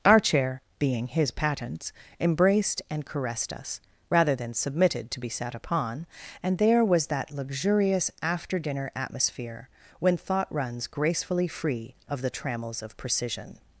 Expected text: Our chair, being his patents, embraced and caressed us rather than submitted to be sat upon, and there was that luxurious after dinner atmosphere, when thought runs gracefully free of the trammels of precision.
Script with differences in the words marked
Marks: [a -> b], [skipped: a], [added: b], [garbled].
Our chair, being his patents, embraced and caressed us rather than submitted to be sat upon, and there was that luxurious after dinner atmosphere, when thought runs gracefully free of the trammels of precision.